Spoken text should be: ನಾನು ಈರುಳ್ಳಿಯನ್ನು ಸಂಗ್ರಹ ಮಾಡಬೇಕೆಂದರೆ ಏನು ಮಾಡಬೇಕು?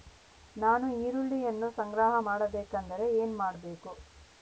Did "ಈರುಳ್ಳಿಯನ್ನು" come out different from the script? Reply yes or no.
no